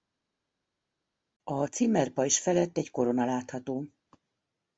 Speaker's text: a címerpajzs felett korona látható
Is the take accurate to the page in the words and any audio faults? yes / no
no